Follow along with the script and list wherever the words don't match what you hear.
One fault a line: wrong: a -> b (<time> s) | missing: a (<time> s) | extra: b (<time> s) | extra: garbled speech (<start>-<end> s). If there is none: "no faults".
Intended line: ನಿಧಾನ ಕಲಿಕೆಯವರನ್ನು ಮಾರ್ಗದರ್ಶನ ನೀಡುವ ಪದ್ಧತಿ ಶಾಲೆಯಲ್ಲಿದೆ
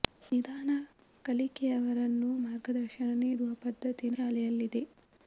no faults